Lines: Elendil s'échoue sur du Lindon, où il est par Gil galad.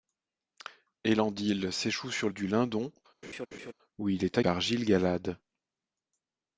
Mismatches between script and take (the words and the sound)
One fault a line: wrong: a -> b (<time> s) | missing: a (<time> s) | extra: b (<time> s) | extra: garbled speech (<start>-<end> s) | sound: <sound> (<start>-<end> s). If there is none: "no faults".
sound: laugh (3.2-3.7 s)